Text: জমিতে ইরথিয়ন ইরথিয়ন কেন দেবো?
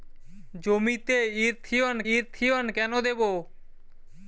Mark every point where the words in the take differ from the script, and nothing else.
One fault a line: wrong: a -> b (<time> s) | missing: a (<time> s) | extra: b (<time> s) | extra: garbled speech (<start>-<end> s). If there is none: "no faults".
no faults